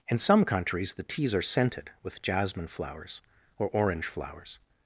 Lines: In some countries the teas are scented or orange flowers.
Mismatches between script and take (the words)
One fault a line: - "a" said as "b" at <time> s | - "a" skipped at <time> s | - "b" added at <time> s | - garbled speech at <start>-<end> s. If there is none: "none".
- "with jasmine flowers" added at 2.0 s